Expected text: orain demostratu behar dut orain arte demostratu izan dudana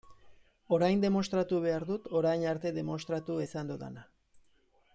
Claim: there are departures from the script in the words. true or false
false